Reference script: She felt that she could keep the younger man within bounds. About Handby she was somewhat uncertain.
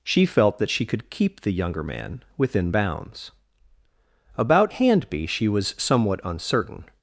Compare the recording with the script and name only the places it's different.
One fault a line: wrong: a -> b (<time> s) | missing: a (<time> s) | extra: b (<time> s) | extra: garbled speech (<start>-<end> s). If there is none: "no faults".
no faults